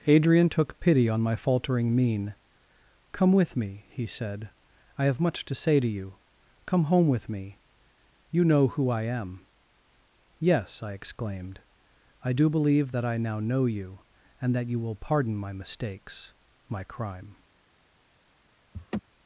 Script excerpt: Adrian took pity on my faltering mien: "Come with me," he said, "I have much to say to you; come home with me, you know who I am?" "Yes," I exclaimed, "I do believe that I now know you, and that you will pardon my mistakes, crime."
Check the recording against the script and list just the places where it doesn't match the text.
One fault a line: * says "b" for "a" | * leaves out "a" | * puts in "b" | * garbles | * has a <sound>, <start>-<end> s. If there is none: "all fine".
* puts in "my"
* has a laugh, 18.7-19.0 s